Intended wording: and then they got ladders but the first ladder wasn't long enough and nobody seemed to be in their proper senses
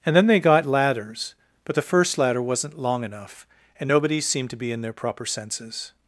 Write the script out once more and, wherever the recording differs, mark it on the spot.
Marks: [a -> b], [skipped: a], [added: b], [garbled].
and then they got ladders but the first ladder wasn't long enough and nobody seemed to be in their proper senses